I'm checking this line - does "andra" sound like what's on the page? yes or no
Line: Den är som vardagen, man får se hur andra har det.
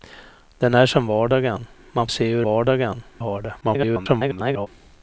no